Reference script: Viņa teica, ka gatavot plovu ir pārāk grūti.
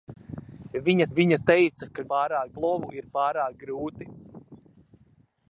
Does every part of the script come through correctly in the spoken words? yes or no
no